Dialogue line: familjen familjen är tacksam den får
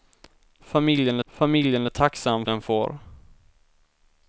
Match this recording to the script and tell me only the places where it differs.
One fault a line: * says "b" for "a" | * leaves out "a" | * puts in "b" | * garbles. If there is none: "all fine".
all fine